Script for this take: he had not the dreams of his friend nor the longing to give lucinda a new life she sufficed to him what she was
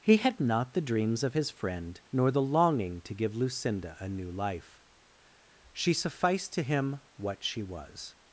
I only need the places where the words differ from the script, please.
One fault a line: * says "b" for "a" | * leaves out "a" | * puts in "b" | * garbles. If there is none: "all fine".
all fine